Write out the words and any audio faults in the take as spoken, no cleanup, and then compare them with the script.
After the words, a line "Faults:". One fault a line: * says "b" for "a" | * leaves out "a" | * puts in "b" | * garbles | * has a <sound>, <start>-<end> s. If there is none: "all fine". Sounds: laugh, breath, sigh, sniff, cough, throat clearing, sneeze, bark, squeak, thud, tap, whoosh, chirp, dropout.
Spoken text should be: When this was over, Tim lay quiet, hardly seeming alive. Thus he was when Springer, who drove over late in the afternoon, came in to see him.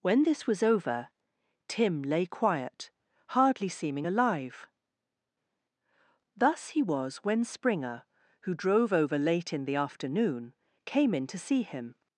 When this was over, Tim lay quiet, hardly seeming alive. Thus he was when Springer, who drove over late in the afternoon, came in to see him.
Faults:
all fine